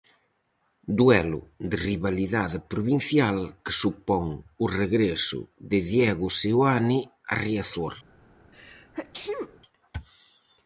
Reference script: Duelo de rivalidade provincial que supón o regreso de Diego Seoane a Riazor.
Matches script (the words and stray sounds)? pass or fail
fail